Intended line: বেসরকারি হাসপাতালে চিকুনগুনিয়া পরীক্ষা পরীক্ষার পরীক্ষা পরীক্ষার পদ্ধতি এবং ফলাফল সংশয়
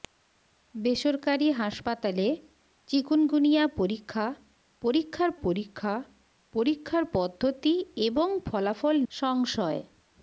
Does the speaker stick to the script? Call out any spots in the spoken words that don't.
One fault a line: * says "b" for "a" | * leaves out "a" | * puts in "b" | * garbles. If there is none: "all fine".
all fine